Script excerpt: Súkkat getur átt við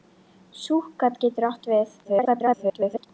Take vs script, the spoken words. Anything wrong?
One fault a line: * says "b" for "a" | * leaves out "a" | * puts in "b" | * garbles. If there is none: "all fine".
* garbles